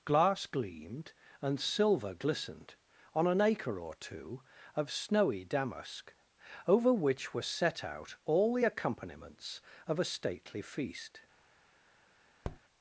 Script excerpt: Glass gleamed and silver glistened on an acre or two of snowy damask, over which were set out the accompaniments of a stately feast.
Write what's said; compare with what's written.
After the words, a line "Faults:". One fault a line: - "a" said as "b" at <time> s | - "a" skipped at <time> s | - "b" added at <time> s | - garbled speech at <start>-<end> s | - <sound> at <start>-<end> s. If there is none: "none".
Glass gleamed and silver glistened on an acre or two of snowy damask, over which were set out all the accompaniments of a stately feast.
Faults:
- "all" added at 8.2 s
- tap at 12.4-12.6 s